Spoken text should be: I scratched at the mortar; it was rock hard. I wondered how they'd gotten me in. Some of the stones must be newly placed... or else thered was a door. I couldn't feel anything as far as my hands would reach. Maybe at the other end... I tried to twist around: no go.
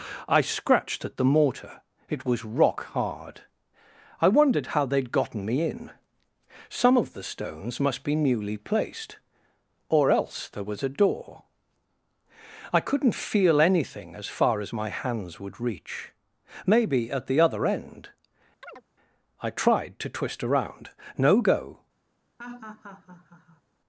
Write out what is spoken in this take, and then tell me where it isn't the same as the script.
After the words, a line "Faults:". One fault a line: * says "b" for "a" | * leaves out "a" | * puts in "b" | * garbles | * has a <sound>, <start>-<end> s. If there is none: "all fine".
I scratched at the mortar; it was rock hard. I wondered how they'd gotten me in. Some of the stones must be newly placed... or else there was a door. I couldn't feel anything as far as my hands would reach. Maybe at the other end... I tried to twist around: no go.
Faults:
* says "there" for "thered"
* has a chirp, 18.6-18.8 s
* has a laugh, 22.4-23.6 s